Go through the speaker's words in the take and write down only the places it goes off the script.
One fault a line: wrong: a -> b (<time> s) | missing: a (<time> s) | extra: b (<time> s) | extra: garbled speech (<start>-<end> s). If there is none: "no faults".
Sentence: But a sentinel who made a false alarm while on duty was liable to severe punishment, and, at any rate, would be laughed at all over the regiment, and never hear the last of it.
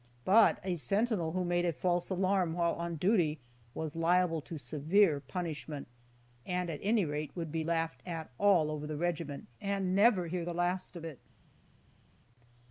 no faults